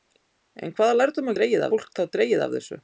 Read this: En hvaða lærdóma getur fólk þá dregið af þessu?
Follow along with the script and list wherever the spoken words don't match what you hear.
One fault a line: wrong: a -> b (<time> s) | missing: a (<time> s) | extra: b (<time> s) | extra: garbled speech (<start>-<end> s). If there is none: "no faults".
wrong: getur -> dregið (1.4 s)